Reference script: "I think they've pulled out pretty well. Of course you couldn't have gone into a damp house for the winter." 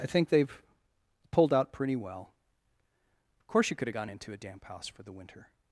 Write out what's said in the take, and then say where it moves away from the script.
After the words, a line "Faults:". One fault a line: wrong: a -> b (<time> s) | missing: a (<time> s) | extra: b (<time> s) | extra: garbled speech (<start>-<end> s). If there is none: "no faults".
"I think they've pulled out pretty well. Of course you could have gone into a damp house for the winter."
Faults:
wrong: couldn't -> could (3.8 s)